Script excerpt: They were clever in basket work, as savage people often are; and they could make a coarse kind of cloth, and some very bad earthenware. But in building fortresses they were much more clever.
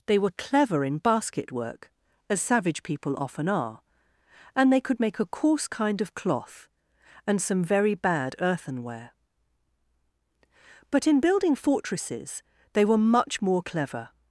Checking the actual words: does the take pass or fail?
pass